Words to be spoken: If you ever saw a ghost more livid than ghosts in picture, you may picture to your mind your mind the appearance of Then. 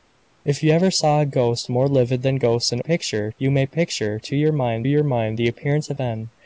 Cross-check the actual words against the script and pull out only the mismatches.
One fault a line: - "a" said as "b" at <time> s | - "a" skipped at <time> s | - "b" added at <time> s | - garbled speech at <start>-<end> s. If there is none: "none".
none